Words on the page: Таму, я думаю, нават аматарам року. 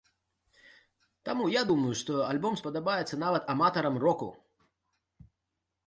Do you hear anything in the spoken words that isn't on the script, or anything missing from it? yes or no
yes